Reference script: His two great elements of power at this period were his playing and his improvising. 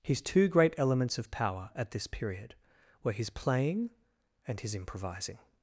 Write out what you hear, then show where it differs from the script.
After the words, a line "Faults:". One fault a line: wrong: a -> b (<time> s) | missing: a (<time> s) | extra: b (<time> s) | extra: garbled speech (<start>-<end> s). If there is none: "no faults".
His two great elements of power at this period were his playing and his improvising.
Faults:
no faults